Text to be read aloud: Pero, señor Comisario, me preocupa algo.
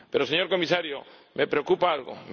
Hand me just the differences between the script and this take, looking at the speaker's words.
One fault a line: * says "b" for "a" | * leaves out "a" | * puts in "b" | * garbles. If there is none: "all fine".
all fine